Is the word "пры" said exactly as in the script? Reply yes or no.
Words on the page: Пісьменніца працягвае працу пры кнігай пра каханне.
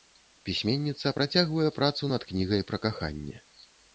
no